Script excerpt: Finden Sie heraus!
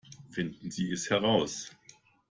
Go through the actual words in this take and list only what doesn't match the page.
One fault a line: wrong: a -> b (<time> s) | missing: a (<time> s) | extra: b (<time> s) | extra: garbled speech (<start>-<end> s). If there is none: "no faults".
extra: es (0.9 s)